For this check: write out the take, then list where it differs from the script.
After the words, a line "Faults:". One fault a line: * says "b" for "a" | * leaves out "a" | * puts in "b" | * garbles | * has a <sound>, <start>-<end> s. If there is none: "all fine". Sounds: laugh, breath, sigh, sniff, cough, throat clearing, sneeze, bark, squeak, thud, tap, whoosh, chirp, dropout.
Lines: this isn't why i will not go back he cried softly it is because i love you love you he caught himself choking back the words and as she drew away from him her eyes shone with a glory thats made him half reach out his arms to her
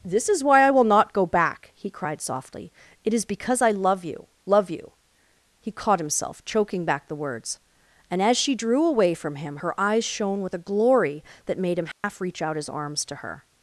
this is why i will not go back he cried softly it is because i love you love you he caught himself choking back the words and as she drew away from him her eyes shone with a glory that made him half reach out his arms to her
Faults:
* says "is" for "isn't"
* says "that" for "thats"
* has a dropout, 11.9-12.0 s